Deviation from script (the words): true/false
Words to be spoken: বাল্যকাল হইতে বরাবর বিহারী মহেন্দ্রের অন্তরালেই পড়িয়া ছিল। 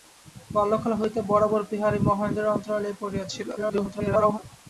true